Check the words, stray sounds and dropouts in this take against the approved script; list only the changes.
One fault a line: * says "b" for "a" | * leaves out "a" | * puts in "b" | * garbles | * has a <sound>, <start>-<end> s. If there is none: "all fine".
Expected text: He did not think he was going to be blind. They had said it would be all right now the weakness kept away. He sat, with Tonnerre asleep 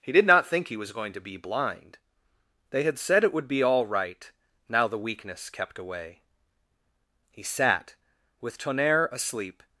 all fine